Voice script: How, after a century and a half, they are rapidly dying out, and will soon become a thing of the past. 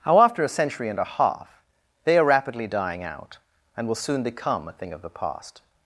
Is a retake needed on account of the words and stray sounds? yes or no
no